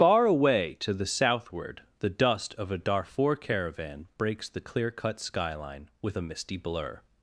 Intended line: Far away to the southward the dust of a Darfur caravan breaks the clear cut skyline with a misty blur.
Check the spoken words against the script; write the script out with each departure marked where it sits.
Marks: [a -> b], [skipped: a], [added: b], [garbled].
Far away to the southward the dust of a Darfur caravan breaks the clear cut skyline with a misty blur.